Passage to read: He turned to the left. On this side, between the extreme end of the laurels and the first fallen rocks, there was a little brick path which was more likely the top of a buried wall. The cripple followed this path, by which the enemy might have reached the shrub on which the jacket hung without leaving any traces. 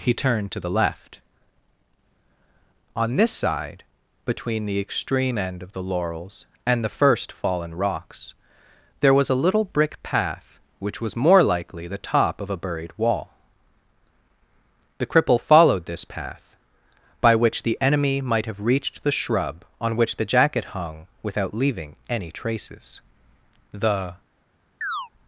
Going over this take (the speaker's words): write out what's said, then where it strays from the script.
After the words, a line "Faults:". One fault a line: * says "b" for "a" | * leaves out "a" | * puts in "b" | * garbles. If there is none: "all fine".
He turned to the left. On this side, between the extreme end of the laurels and the first fallen rocks, there was a little brick path which was more likely the top of a buried wall. The cripple followed this path, by which the enemy might have reached the shrub on which the jacket hung without leaving any traces. The
Faults:
* puts in "The"